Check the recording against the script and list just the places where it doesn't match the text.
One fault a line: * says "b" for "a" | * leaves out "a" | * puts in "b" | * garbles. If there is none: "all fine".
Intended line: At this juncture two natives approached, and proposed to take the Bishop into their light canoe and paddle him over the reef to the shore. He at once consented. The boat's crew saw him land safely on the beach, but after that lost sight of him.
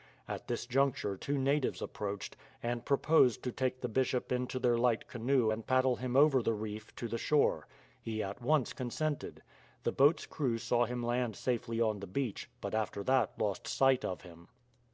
all fine